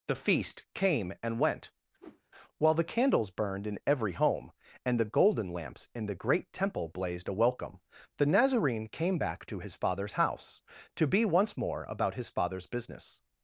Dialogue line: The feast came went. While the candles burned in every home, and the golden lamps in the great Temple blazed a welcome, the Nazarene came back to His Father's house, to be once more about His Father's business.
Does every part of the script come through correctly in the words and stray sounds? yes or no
no